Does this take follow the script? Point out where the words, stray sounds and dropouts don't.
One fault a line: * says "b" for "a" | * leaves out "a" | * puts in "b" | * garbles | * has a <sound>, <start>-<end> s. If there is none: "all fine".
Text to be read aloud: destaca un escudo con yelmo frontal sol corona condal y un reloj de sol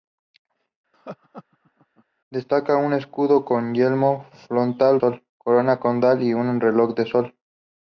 * has a laugh, 0.9-2.0 s